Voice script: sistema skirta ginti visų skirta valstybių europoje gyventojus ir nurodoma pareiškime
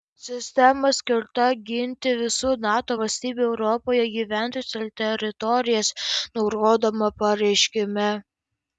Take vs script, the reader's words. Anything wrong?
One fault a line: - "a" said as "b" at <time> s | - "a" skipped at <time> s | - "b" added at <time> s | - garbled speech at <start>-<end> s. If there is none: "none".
- "skirta" said as "nato" at 2.6 s
- "teritorijas" added at 5.0 s